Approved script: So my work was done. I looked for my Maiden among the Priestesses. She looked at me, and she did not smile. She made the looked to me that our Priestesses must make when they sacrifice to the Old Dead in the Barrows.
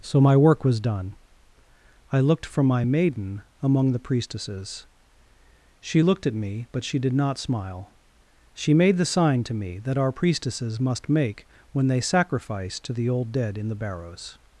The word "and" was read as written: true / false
false